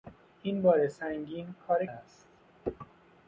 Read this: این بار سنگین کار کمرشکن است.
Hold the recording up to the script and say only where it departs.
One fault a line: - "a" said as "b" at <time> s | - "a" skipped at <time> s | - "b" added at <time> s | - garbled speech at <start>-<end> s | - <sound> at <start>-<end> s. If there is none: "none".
- "کمرشکن" skipped at 1.8 s